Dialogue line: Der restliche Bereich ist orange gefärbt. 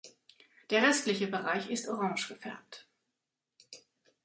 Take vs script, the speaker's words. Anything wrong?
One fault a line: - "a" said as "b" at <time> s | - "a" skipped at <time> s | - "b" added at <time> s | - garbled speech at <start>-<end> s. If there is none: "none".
none